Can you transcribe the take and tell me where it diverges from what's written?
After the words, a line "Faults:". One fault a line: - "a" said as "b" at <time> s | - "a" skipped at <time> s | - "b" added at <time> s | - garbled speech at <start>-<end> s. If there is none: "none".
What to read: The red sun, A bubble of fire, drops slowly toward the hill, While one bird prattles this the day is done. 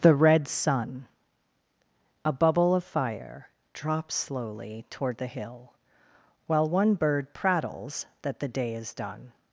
The red sun, A bubble of fire, drops slowly toward the hill, While one bird prattles that the day is done.
Faults:
- "this" said as "that" at 8.2 s